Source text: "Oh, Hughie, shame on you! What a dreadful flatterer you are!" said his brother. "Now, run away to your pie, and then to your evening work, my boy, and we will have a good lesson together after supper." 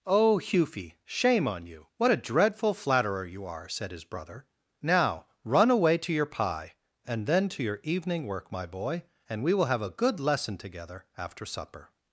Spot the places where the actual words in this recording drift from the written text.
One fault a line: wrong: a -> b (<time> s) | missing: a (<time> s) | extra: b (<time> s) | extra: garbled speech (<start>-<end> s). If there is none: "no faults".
no faults